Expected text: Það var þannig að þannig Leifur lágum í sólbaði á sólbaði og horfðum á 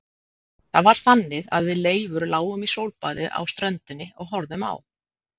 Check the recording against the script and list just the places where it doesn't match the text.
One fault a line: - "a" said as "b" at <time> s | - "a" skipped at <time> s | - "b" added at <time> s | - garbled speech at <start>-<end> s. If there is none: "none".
- "þannig" said as "við" at 1.7 s
- "sólbaði" said as "ströndinni" at 3.5 s